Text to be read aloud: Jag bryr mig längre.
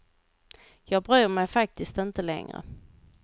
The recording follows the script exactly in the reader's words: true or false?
false